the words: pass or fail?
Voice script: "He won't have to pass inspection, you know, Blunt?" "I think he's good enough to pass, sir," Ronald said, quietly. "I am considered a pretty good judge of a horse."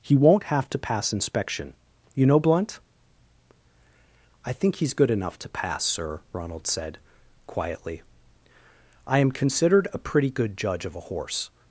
pass